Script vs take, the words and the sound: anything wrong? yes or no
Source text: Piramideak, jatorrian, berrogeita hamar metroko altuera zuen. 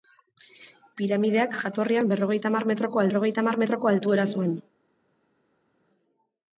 yes